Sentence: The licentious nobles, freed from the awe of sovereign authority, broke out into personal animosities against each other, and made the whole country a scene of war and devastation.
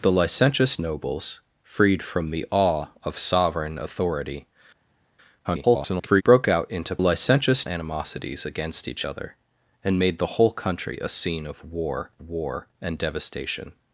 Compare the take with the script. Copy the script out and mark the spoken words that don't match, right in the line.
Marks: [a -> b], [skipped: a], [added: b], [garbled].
The licentious nobles, freed from the awe of sovereign authority, [garbled] broke out into [personal -> licentious] animosities against each other, and made the whole country a scene of war [added: war] and devastation.